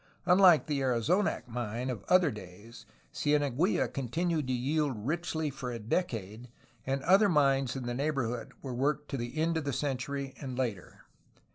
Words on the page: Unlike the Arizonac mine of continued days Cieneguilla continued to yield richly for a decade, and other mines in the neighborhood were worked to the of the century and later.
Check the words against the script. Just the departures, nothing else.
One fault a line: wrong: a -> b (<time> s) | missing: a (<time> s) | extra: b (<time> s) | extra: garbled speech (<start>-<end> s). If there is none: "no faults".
wrong: continued -> other (2.1 s)
extra: end (9.4 s)